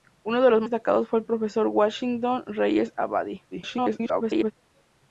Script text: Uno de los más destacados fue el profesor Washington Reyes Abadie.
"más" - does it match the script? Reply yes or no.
no